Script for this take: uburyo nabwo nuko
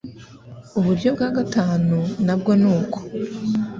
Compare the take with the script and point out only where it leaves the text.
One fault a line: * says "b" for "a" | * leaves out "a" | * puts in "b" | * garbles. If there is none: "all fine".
* puts in "bwa gatanu"